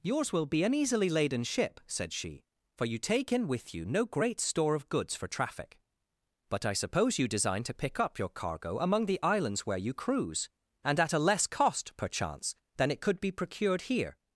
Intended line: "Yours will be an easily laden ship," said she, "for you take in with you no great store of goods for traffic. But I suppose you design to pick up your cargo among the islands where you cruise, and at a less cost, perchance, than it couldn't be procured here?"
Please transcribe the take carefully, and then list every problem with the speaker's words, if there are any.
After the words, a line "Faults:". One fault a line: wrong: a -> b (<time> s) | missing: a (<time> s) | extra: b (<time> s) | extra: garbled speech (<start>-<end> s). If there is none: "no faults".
"Yours will be an easily laden ship," said she, "for you take in with you no great store of goods for traffic. But I suppose you design to pick up your cargo among the islands where you cruise, and at a less cost, perchance, than it could be procured here?"
Faults:
wrong: couldn't -> could (13.0 s)